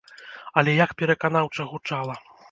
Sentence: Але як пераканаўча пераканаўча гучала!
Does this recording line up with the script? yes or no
no